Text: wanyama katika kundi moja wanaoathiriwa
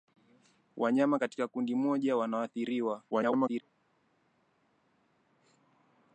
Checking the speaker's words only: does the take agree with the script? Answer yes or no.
no